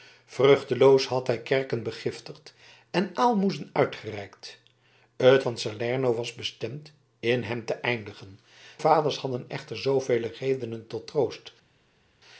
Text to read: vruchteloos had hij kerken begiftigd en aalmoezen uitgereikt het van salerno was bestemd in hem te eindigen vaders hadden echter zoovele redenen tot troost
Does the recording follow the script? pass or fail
pass